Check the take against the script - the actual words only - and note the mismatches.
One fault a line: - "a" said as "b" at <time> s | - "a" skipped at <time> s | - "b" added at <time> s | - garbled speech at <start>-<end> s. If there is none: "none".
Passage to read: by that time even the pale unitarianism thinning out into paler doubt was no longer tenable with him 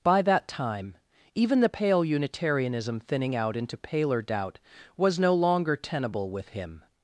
none